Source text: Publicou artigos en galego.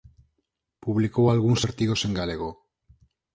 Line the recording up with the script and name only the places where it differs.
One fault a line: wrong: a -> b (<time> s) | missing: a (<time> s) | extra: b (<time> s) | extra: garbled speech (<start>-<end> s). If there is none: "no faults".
extra: algúns (1.3 s)